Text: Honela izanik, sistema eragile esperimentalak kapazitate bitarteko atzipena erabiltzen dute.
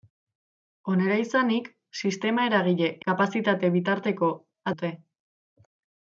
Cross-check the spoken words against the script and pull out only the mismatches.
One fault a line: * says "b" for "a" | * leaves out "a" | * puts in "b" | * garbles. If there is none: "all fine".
* leaves out "esperimentalak"
* leaves out "atzipena erabiltzen"